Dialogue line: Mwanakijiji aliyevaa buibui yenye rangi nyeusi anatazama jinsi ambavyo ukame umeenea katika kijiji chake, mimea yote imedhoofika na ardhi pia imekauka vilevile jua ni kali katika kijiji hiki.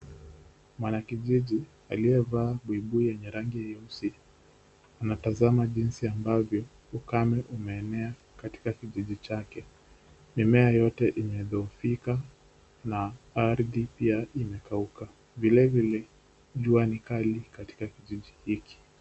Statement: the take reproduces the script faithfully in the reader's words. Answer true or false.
true